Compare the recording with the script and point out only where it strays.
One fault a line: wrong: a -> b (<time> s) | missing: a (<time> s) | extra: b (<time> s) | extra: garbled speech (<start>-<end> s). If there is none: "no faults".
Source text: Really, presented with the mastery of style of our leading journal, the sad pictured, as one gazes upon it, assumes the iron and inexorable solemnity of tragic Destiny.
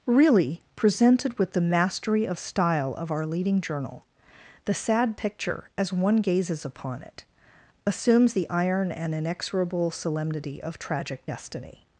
wrong: pictured -> picture (5.2 s)